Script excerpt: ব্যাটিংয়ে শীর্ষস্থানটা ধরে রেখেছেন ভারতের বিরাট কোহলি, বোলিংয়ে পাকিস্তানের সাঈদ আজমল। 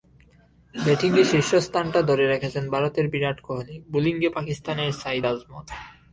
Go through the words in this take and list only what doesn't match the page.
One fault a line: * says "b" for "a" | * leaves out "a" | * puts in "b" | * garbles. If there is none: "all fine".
all fine